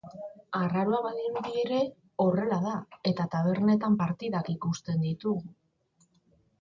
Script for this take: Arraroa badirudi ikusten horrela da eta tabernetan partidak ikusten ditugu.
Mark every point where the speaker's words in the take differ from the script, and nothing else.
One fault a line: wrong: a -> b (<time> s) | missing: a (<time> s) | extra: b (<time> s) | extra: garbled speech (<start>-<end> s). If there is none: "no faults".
wrong: ikusten -> ere (1.6 s)